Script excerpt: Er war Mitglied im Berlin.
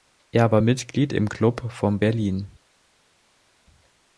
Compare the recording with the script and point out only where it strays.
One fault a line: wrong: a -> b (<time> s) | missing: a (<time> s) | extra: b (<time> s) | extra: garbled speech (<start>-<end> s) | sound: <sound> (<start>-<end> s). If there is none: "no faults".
extra: Club von (1.3 s)